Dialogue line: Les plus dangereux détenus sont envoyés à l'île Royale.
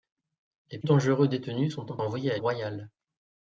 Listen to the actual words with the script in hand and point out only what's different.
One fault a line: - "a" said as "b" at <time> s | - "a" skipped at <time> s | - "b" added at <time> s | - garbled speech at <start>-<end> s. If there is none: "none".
- "plus" skipped at 0.8 s
- "sont" added at 1.9 s
- "l'île" skipped at 2.4 s